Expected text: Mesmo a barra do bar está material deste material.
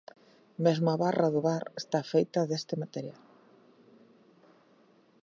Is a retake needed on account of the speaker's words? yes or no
yes